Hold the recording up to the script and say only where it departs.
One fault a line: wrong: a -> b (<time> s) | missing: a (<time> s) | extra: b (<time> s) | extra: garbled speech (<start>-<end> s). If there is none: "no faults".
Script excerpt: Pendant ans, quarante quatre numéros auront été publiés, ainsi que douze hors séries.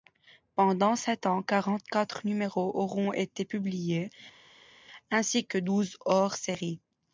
extra: sept (0.9 s)